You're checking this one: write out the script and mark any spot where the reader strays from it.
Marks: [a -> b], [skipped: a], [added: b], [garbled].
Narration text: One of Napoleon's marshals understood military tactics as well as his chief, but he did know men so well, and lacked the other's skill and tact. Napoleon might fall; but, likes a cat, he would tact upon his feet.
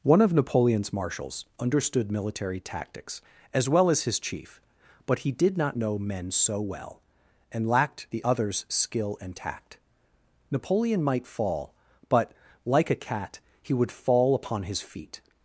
One of Napoleon's marshals understood military tactics as well as his chief, but he did [added: not] know men so well, and lacked the other's skill and tact. Napoleon might fall; but, [likes -> like] a cat, he would [tact -> fall] upon his feet.